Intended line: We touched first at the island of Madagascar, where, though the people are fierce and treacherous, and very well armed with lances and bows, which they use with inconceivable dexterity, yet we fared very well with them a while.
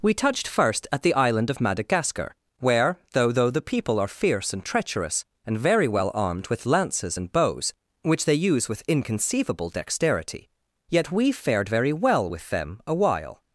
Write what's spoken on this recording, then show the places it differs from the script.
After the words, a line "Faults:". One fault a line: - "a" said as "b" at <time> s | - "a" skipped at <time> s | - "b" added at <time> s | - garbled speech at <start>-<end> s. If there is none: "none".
We touched first at the island of Madagascar, where, though though the people are fierce and treacherous, and very well armed with lances and bows, which they use with inconceivable dexterity, yet we fared very well with them a while.
Faults:
- "though" added at 3.3 s